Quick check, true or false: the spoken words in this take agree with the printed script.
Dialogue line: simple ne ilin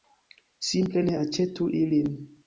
false